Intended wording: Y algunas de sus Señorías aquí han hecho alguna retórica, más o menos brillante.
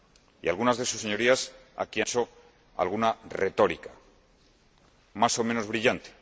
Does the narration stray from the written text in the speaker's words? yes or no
yes